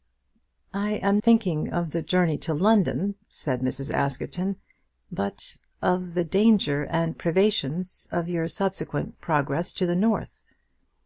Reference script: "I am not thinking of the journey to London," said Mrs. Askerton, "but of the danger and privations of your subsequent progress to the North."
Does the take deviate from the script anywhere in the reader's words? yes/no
yes